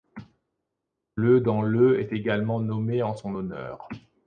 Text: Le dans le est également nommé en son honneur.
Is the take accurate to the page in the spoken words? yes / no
yes